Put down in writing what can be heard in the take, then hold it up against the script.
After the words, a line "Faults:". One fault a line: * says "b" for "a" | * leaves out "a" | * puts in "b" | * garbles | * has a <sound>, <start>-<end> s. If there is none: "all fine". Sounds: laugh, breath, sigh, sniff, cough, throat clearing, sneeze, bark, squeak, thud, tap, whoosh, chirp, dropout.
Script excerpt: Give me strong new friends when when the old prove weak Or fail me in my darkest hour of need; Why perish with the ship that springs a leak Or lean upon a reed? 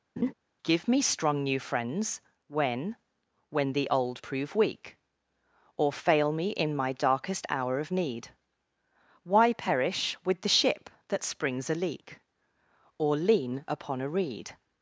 Give me strong new friends when when the old prove weak Or fail me in my darkest hour of need; Why perish with the ship that springs a leak Or lean upon a reed?
Faults:
* has a laugh, 0.2-0.3 s